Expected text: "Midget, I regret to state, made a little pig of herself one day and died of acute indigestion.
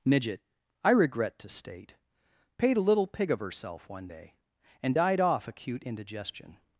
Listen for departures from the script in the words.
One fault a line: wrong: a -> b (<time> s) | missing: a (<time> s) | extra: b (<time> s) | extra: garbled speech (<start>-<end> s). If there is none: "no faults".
wrong: made -> paid (2.6 s)
wrong: of -> off (5.2 s)